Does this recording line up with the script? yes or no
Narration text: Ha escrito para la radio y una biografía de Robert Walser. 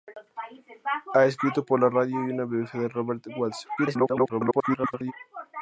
no